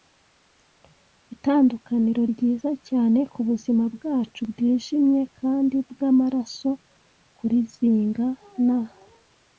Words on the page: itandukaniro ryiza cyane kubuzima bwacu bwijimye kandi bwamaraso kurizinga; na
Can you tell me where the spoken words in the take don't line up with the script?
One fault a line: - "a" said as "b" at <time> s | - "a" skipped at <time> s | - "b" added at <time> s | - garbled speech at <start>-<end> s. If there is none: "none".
none